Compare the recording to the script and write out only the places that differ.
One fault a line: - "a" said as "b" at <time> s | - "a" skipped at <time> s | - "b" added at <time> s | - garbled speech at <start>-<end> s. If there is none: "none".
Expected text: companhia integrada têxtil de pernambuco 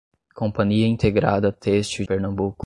- "de" skipped at 2.0 s